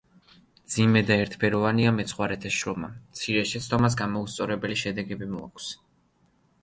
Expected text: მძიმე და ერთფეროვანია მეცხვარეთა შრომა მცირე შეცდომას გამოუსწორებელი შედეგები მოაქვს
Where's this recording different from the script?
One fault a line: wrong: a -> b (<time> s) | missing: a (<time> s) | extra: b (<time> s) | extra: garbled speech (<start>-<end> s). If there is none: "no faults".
no faults